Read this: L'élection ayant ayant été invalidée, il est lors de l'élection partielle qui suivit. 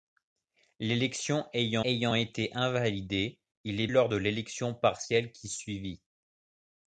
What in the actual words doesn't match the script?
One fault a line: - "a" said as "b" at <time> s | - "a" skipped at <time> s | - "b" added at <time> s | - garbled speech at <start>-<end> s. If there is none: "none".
none